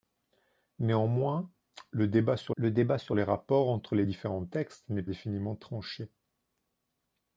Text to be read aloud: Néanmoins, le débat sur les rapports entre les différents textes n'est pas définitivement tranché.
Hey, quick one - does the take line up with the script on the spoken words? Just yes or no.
no